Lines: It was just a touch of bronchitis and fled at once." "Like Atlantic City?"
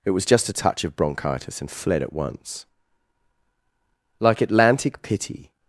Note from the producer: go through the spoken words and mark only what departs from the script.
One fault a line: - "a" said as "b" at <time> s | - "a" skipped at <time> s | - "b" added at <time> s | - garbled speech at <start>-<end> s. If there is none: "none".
- "City" said as "Pity" at 5.0 s